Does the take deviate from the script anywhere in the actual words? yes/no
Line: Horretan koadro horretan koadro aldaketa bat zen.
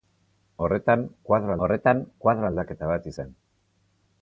no